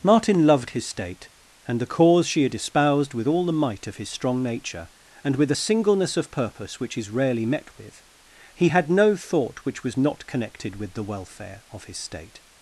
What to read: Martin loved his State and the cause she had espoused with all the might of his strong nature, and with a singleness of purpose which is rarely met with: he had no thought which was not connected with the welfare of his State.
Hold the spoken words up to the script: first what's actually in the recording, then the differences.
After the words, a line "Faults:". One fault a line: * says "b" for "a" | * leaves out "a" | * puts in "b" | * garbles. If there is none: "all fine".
Martin loved his State and the cause she had espoused with all the might of his strong nature, and with a singleness of purpose which is rarely met with: he had no thought which was not connected with the welfare of his State.
Faults:
all fine